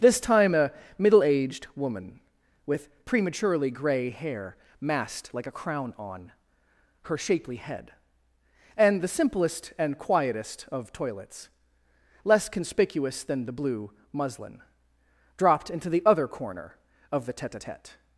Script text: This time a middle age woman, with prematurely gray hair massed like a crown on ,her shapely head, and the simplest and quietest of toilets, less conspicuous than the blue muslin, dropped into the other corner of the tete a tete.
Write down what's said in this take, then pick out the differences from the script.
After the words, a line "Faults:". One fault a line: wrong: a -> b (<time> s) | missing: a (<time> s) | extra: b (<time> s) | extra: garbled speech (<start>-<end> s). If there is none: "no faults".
This time a middle aged woman, with prematurely gray hair massed like a crown on ,her shapely head, and the simplest and quietest of toilets, less conspicuous than the blue muslin, dropped into the other corner of the tete a tete.
Faults:
wrong: age -> aged (1.2 s)